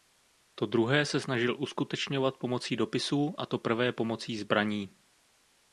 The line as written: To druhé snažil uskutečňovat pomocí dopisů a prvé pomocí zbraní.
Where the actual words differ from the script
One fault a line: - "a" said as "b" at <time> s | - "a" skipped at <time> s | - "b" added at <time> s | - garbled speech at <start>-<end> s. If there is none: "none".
- "se" added at 1.1 s
- "to" added at 3.4 s